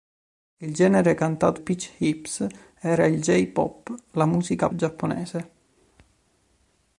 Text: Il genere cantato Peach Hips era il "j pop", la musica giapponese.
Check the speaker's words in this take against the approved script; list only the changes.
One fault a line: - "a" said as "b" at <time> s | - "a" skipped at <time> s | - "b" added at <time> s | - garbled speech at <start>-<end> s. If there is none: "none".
none